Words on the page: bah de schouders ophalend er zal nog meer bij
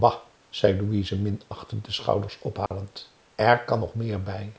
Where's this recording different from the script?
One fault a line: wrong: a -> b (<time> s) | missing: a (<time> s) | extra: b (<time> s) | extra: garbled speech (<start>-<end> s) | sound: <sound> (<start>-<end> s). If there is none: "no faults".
extra: zei louise minachtend (0.5 s)
sound: dropout (2.7-2.7 s)
wrong: zal -> kan (3.6 s)